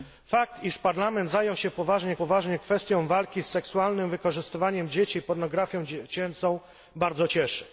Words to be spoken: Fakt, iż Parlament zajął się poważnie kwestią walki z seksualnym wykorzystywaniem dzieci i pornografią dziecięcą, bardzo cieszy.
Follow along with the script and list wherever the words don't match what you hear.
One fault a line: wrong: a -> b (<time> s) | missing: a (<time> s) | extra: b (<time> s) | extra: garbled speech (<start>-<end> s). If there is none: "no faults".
extra: poważnie (2.1 s)